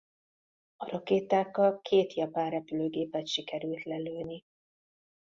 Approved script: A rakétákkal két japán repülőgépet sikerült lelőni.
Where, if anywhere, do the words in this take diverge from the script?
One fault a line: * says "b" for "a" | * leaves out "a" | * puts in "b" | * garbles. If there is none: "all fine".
all fine